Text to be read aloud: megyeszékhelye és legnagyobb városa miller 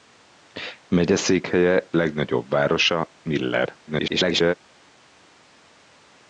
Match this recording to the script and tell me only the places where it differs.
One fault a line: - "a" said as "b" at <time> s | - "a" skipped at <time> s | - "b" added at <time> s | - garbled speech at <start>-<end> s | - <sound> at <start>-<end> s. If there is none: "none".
- "és" skipped at 1.9 s
- garbled speech at 3.9-4.5 s